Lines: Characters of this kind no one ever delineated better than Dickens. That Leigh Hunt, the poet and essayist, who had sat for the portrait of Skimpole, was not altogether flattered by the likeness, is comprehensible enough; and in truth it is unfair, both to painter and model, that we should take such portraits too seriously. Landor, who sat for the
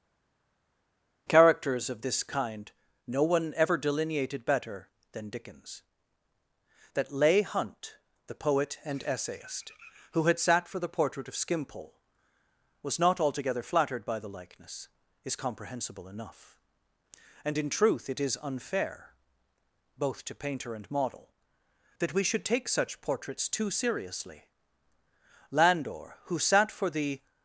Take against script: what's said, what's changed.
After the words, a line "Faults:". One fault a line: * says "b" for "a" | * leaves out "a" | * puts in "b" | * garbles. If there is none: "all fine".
Characters of this kind no one ever delineated better than Dickens. That Leigh Hunt, the poet and essayist, who had sat for the portrait of Skimpole, was not altogether flattered by the likeness, is comprehensible enough; and in truth it is unfair, both to painter and model, that we should take such portraits too seriously. Landor, who sat for the
Faults:
all fine